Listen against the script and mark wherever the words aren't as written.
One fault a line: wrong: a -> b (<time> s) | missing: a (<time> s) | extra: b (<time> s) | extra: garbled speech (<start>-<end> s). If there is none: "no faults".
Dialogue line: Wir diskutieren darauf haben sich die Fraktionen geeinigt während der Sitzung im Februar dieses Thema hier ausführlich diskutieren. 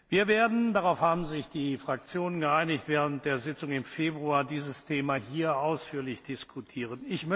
wrong: diskutieren -> werden (0.3 s)